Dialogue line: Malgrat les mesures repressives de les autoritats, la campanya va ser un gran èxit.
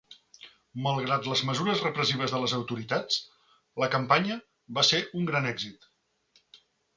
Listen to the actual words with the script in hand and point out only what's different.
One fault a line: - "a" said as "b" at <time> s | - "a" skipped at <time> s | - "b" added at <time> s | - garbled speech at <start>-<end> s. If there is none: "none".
none